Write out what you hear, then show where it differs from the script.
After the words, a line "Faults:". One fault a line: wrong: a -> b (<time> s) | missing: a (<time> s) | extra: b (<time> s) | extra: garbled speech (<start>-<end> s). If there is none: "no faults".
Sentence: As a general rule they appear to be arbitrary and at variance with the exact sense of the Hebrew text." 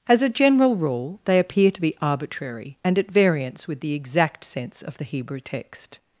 As a general rule they appear to be arbitrary and at variance with the exact sense of the Hebrew text."
Faults:
no faults